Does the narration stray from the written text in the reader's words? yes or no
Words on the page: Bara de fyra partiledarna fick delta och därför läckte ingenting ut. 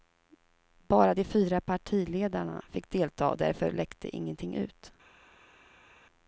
no